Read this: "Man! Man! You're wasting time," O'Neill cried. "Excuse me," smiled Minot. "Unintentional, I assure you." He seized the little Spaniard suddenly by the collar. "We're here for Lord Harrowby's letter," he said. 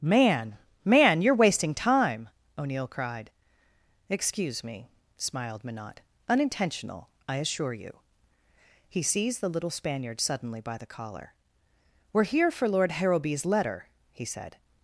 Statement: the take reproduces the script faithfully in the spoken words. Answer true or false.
true